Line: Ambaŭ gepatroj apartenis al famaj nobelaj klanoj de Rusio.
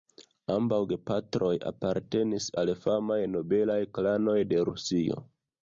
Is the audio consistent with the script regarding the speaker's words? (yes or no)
yes